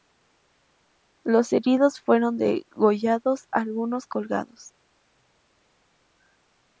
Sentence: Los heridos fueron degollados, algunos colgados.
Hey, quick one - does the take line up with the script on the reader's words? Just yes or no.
yes